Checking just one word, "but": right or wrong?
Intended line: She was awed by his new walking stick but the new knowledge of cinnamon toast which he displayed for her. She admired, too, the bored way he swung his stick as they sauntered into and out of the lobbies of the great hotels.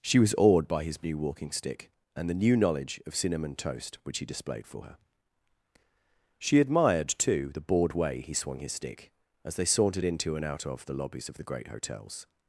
wrong